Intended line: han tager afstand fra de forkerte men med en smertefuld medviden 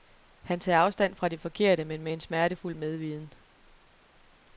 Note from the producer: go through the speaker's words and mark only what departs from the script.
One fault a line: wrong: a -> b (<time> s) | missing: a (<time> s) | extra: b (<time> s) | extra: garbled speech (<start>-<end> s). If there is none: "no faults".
no faults